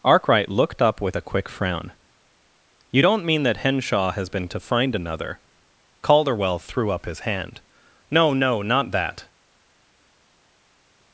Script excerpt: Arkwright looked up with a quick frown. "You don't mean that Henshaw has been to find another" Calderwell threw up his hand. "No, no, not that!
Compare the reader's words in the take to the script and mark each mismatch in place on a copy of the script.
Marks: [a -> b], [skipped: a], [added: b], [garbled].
Arkwright looked up with a quick frown. "You don't mean that Henshaw has been to find another" Calderwell threw up his hand. "No, no, not that!